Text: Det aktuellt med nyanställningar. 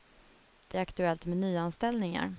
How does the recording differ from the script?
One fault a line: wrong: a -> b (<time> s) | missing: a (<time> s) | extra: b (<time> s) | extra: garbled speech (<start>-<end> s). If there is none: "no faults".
no faults